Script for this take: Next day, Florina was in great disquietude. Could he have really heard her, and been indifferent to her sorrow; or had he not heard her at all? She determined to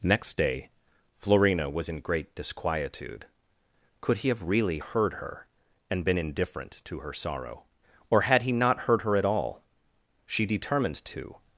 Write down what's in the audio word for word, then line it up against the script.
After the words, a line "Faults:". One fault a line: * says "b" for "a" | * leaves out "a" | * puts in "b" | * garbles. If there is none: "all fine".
Next day, Florina was in great disquietude. Could he have really heard her, and been indifferent to her sorrow; or had he not heard her at all? She determined to
Faults:
all fine